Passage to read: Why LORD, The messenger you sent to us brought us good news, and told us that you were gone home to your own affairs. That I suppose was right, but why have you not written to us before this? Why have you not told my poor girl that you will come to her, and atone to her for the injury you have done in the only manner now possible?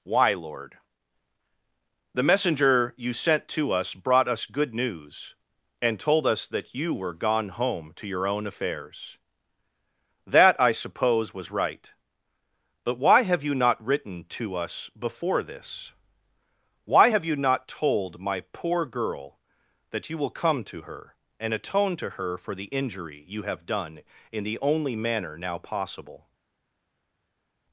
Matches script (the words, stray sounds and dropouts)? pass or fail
pass